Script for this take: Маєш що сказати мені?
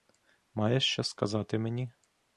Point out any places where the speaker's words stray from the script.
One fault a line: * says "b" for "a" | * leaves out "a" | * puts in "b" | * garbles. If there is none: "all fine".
all fine